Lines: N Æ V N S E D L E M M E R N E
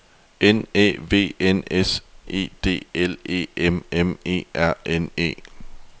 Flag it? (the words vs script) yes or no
no